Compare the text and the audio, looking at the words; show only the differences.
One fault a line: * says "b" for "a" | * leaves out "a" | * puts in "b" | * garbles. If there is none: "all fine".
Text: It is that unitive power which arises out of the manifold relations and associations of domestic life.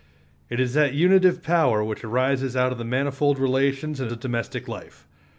* leaves out "associations"